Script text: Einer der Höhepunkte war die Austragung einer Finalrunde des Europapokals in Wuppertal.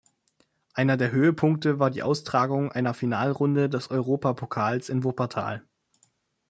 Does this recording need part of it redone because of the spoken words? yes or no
no